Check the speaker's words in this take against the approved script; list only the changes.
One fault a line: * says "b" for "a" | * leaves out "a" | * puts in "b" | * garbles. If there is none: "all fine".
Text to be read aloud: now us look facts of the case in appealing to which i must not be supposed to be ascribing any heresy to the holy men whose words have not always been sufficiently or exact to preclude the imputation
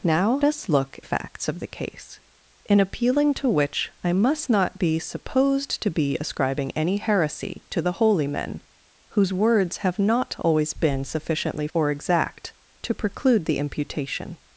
all fine